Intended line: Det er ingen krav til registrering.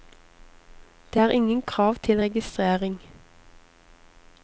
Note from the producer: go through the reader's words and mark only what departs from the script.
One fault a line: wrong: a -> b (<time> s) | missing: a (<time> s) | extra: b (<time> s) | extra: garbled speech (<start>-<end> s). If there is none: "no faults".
no faults